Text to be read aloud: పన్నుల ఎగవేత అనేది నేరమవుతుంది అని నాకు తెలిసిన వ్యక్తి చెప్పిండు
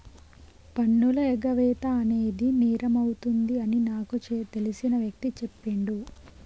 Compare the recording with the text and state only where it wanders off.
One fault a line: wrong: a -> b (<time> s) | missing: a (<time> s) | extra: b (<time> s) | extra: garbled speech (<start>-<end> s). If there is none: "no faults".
no faults